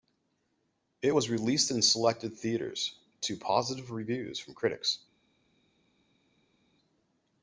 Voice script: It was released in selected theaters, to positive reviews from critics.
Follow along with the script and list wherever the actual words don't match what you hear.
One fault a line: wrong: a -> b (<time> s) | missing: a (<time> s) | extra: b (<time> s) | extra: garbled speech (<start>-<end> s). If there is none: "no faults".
no faults